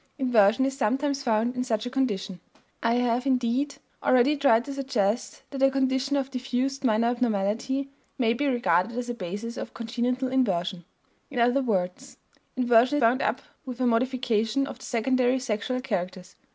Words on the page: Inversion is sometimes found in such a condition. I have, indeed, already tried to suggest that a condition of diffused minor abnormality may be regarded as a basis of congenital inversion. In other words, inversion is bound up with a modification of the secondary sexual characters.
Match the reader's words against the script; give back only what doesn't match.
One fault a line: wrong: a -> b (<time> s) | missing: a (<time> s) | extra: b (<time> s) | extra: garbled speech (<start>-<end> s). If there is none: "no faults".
missing: is (13.0 s)